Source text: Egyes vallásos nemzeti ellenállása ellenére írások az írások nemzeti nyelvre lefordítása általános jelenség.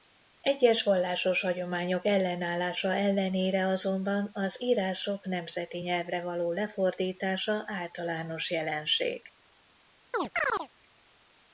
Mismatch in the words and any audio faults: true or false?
true